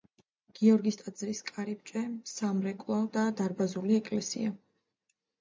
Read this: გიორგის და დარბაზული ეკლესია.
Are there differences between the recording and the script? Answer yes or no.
yes